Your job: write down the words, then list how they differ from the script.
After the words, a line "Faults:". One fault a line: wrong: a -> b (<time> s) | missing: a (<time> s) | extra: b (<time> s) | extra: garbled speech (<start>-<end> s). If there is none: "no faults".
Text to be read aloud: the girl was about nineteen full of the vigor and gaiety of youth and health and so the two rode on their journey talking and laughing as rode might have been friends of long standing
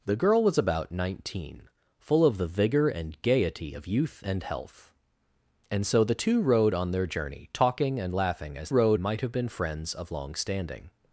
the girl was about nineteen full of the vigor and gaiety of youth and health and so the two rode on their journey talking and laughing as rode might have been friends of long standing
Faults:
no faults